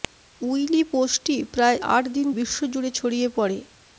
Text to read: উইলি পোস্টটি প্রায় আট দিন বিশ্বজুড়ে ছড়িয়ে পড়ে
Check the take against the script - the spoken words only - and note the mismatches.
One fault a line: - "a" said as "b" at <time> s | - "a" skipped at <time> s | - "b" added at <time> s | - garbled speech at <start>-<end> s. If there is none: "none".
none